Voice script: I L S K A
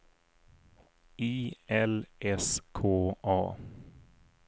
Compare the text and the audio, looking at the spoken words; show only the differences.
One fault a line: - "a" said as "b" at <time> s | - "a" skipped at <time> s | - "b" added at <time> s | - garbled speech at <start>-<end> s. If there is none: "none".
none